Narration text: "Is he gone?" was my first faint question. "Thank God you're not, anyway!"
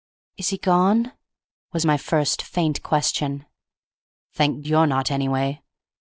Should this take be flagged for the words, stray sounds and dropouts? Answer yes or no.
yes